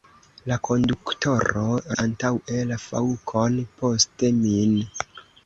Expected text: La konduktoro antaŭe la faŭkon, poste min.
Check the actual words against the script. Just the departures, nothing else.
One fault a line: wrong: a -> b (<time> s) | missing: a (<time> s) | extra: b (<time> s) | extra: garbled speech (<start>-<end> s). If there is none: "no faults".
no faults